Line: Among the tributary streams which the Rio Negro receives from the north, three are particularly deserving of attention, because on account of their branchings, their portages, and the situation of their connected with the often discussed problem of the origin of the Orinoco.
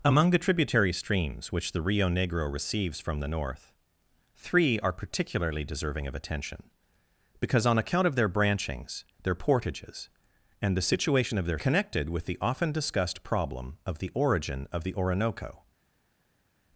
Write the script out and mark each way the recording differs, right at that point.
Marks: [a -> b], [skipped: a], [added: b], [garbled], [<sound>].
Among the tributary streams which the Rio Negro receives from the north, three are particularly deserving of attention, because on account of their branchings, their portages, and the situation of their connected with the often discussed problem of the origin of the Orinoco.